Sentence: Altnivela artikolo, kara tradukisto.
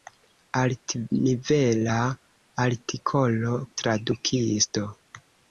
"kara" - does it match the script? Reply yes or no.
no